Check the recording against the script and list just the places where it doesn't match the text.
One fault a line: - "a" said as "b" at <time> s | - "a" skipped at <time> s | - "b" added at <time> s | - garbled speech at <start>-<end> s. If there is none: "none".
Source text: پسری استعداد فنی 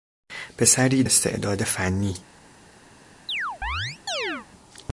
none